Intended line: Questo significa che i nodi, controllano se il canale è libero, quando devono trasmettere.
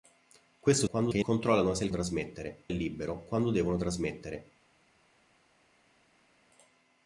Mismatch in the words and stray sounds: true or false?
true